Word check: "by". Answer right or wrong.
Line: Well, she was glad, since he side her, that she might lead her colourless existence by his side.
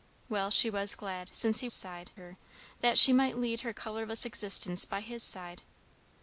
right